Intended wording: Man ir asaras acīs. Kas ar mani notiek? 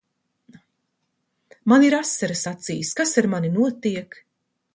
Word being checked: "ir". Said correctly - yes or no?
yes